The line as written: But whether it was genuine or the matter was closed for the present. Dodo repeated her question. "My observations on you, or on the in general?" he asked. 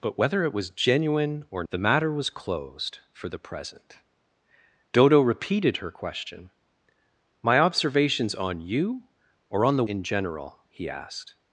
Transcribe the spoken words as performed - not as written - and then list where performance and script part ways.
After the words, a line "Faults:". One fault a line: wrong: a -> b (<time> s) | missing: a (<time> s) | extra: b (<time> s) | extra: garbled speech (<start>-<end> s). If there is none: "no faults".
But whether it was genuine or the matter was closed for the present. Dodo repeated her question. "My observations on you, or on the in general?" he asked.
Faults:
no faults